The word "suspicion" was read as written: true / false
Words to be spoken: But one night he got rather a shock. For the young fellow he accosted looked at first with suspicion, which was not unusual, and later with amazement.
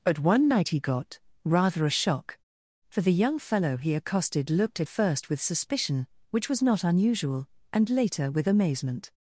true